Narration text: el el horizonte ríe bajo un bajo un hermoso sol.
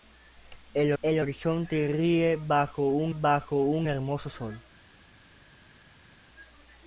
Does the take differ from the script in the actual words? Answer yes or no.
no